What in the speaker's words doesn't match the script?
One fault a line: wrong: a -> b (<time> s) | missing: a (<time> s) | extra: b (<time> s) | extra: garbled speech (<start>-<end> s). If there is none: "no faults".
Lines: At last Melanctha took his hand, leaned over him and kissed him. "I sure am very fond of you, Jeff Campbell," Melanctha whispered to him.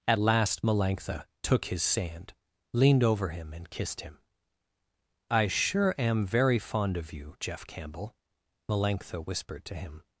wrong: hand -> sand (1.8 s)